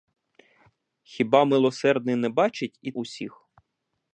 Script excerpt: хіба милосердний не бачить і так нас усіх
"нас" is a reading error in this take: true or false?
true